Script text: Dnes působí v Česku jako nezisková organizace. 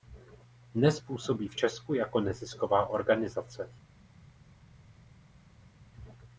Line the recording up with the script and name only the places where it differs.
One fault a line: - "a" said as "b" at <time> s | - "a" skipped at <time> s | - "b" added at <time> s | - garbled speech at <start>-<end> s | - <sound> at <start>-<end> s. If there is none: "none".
none